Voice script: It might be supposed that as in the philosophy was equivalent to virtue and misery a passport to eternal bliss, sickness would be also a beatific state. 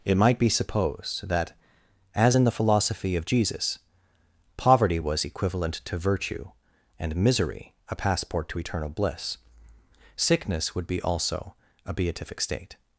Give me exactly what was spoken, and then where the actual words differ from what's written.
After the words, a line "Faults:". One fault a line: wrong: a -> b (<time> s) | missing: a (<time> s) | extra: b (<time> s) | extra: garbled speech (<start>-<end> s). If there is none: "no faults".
It might be supposed that as in the philosophy of Jesus poverty was equivalent to virtue and misery a passport to eternal bliss, sickness would be also a beatific state.
Faults:
extra: of Jesus poverty (3.1 s)